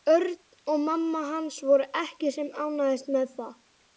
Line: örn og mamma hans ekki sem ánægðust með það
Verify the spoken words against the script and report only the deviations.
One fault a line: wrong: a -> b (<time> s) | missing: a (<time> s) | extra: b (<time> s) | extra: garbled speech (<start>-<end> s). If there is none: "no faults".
extra: voru (1.7 s)